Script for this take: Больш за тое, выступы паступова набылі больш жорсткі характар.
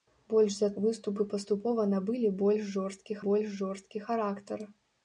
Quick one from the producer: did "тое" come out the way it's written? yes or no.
no